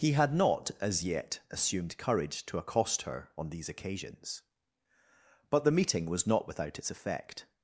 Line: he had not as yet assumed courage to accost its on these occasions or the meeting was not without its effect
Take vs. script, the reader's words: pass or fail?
fail